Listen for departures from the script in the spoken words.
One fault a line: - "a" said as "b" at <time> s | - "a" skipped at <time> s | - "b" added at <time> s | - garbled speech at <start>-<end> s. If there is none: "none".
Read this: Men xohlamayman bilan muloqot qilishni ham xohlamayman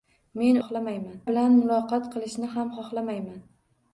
none